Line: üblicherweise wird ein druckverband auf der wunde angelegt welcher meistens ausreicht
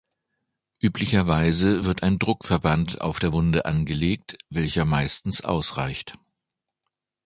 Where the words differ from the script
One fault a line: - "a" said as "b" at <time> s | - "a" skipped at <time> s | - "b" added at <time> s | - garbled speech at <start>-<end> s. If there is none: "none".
none